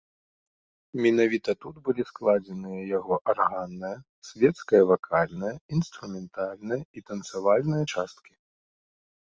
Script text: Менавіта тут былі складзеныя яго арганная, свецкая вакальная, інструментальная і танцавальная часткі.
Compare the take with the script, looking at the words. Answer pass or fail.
pass